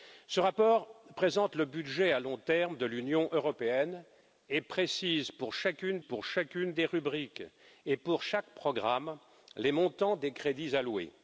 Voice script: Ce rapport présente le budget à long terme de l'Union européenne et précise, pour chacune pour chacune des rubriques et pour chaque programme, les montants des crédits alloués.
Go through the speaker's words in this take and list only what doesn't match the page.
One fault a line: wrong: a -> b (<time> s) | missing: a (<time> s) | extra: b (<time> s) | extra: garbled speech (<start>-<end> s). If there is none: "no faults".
no faults